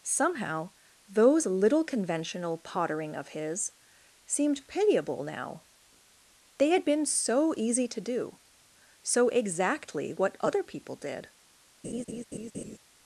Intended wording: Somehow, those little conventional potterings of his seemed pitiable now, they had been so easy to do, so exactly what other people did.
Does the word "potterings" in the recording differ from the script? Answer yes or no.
yes